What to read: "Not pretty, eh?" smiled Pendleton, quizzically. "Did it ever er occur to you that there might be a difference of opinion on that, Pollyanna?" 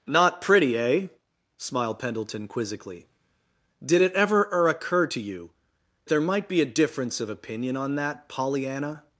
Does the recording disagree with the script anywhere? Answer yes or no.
yes